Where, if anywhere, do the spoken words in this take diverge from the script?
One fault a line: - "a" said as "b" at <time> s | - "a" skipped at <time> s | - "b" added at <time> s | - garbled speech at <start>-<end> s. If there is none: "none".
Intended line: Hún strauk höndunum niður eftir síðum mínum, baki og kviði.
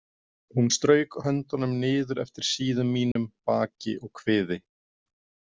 none